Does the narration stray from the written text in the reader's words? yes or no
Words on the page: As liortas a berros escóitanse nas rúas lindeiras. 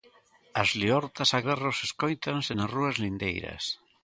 no